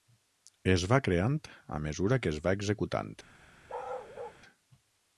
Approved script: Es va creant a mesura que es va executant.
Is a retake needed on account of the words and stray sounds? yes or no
yes